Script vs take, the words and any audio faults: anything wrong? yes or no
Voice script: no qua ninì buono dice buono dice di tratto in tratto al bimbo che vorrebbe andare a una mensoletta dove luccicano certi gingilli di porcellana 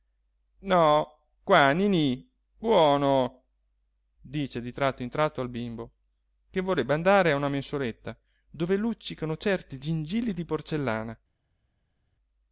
yes